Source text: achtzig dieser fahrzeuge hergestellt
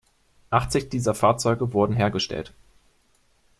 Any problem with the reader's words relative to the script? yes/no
yes